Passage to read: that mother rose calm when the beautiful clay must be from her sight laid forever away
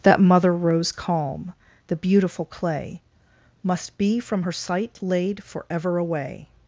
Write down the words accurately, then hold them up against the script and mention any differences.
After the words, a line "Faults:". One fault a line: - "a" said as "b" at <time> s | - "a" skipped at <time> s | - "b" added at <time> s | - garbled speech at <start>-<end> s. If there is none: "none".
that mother rose calm the beautiful clay must be from her sight laid forever away
Faults:
- "when" skipped at 1.5 s